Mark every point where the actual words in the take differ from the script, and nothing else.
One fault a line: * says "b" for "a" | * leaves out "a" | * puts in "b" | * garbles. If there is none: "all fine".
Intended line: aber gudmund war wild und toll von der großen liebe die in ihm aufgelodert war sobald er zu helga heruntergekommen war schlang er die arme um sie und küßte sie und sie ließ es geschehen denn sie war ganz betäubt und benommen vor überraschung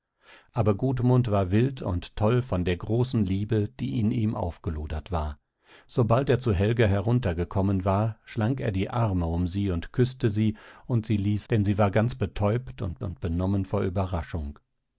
* leaves out "es geschehen"
* puts in "und"